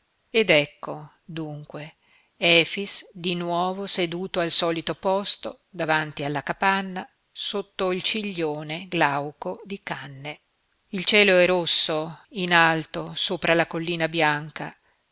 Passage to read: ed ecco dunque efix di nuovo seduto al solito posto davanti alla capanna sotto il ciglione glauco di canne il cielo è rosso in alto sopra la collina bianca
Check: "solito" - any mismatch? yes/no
no